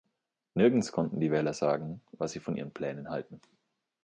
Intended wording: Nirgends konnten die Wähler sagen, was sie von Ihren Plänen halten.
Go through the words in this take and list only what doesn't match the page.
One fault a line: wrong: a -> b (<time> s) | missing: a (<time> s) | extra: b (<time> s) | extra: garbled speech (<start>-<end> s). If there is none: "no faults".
no faults